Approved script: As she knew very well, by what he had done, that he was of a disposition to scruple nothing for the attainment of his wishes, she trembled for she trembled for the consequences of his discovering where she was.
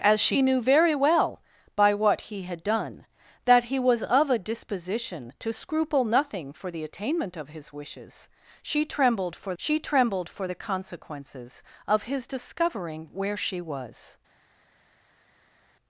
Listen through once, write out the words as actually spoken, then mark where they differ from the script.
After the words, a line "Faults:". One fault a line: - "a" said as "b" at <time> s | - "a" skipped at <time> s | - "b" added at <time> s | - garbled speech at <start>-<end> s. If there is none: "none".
As she knew very well, by what he had done, that he was of a disposition to scruple nothing for the attainment of his wishes, she trembled for she trembled for the consequences of his discovering where she was.
Faults:
none